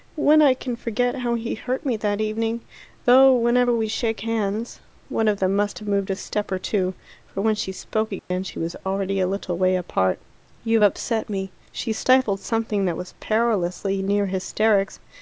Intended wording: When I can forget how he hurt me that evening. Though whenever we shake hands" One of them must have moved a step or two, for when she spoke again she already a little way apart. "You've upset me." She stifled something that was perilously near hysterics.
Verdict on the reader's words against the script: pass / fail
fail